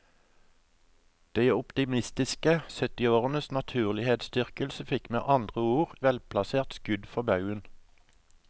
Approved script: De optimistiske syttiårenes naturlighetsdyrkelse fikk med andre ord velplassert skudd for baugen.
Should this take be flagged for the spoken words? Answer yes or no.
no